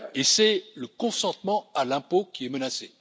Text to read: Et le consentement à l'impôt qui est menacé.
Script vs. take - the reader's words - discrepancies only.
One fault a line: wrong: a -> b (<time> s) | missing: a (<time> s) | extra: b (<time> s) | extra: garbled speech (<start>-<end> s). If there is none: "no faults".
extra: c'est (0.2 s)